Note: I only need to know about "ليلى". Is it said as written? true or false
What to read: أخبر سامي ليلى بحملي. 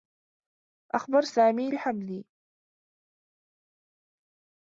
false